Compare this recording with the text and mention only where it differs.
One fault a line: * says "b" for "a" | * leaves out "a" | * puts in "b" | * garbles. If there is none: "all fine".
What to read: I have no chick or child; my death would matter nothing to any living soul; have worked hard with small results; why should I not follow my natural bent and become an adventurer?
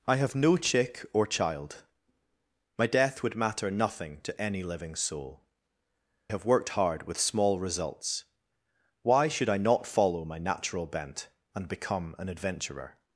all fine